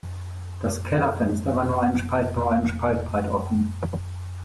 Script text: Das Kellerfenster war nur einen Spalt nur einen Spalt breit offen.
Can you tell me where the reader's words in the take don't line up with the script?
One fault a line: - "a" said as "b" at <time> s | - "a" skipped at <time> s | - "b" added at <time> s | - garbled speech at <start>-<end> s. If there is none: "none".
none